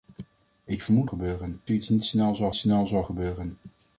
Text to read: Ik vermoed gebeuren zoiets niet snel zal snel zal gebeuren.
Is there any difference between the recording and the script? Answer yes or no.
no